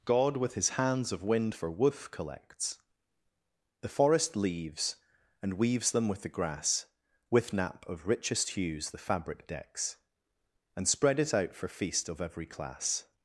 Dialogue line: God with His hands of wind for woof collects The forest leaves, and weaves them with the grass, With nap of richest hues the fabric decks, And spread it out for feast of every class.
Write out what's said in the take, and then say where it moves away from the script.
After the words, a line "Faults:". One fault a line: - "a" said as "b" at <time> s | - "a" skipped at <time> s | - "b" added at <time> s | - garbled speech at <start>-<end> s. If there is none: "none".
God with His hands of wind for woof collects The forest leaves, and weaves them with the grass, With nap of richest hues the fabric decks, And spread it out for feast of every class.
Faults:
none